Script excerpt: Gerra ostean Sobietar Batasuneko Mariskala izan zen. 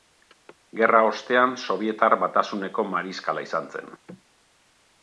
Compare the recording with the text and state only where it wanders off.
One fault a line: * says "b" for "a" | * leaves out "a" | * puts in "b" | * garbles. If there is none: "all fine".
all fine